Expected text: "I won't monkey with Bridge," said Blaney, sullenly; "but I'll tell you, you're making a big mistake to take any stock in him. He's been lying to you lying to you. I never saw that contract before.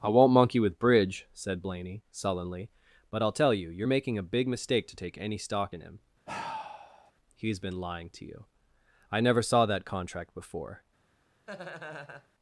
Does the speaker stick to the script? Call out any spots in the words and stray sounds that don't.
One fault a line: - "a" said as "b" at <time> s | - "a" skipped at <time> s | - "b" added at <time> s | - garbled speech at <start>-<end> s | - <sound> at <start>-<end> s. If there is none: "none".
- sigh at 6.3-7.1 s
- "lying to you" skipped at 8.5 s
- laugh at 11.5-12.3 s